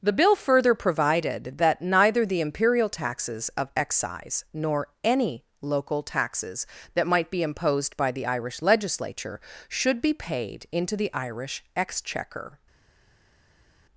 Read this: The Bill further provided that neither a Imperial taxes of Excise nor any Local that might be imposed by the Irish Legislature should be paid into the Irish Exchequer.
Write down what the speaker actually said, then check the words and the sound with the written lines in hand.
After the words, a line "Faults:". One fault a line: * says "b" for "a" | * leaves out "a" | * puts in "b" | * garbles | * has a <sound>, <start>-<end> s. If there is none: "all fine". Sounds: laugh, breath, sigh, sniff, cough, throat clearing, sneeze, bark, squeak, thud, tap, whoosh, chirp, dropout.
The Bill further provided that neither the Imperial taxes of Excise nor any Local taxes that might be imposed by the Irish Legislature should be paid into the Irish Exchequer.
Faults:
* says "the" for "a"
* puts in "taxes"